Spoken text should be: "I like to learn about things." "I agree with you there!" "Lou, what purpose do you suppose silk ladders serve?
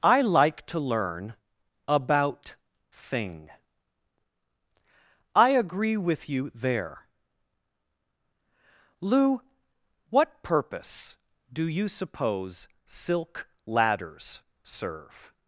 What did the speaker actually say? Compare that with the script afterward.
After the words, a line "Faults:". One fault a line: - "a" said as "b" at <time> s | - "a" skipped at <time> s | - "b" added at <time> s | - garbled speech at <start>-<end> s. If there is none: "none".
"I like to learn about thing." "I agree with you there!" "Lou, what purpose do you suppose silk ladders serve?
Faults:
- "things" said as "thing" at 2.9 s